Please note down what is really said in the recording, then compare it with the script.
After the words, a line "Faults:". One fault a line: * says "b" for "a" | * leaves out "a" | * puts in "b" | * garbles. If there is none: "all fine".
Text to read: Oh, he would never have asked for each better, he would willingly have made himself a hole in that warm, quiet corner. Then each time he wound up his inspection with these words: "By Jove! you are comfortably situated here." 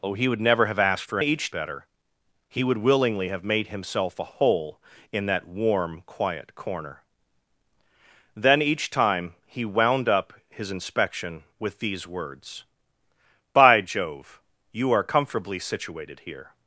Oh, he would never have asked for each better, he would willingly have made himself a hole in that warm, quiet corner. Then each time he wound up his inspection with these words: "By Jove! you are comfortably situated here."
Faults:
all fine